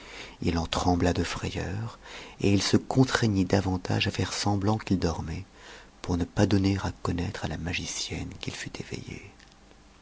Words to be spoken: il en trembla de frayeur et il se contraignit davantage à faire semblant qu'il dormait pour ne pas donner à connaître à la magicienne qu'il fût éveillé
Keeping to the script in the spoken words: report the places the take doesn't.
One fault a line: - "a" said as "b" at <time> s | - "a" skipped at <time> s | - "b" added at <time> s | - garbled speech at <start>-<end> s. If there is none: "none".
none